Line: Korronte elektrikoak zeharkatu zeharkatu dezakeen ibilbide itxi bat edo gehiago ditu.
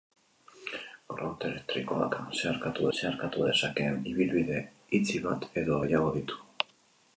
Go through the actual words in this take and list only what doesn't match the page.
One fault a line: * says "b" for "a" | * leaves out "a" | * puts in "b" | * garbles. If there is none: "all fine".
all fine